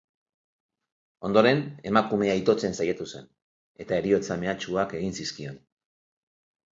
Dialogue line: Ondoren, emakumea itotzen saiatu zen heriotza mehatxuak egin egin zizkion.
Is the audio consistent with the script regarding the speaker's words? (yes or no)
no